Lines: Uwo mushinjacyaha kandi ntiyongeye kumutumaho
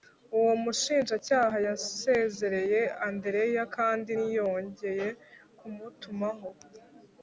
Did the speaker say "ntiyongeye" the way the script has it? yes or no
yes